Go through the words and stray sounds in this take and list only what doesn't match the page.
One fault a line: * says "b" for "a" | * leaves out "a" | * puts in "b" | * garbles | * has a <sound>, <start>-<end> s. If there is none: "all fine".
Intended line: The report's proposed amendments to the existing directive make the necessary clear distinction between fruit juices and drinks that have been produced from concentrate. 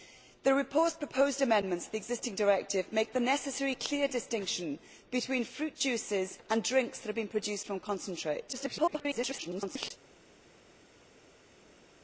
* garbles